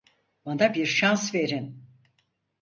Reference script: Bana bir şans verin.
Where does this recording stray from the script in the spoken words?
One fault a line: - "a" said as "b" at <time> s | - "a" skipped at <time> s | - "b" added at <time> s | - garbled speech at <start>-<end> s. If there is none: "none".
none